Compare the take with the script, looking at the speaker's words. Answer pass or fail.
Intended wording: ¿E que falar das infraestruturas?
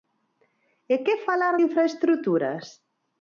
fail